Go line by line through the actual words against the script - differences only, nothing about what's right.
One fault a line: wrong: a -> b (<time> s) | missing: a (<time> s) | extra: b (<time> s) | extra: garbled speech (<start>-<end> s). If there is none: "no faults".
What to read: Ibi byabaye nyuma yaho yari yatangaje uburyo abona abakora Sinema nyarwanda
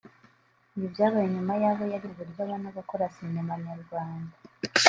missing: yatangaje (2.1 s)